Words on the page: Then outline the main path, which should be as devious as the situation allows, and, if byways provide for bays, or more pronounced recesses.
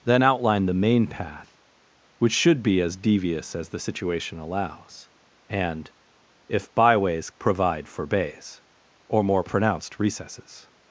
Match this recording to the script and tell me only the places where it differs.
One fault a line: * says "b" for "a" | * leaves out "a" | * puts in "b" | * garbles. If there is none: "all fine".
all fine